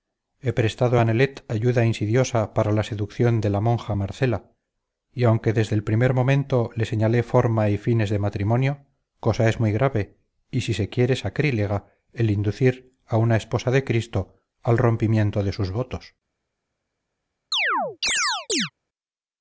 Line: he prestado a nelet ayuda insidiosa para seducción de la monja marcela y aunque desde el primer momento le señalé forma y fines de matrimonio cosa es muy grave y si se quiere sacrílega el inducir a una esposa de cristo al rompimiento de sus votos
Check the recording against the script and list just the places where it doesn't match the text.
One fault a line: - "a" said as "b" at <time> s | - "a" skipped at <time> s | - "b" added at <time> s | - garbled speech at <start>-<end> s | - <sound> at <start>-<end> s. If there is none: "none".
- "la" added at 2.7 s
- chirp at 17.5-18.7 s